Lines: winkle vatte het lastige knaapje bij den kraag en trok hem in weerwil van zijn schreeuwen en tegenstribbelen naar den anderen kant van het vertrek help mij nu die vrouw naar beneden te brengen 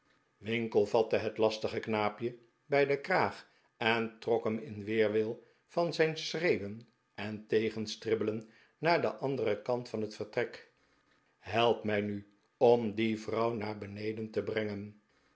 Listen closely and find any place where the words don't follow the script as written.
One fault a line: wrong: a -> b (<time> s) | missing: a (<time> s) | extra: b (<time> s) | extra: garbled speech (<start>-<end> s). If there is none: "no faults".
extra: om (12.6 s)